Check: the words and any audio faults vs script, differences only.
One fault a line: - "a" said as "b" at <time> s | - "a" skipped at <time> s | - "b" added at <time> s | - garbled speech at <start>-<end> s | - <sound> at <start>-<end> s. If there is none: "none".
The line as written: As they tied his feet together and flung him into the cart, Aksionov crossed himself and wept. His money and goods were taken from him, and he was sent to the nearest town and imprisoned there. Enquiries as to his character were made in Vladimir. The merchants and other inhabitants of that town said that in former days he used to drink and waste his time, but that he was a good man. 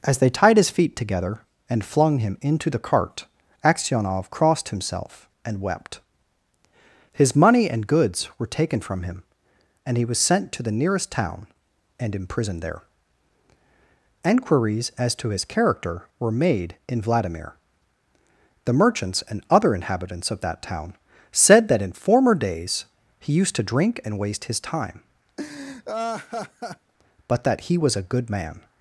- laugh at 25.4-26.9 s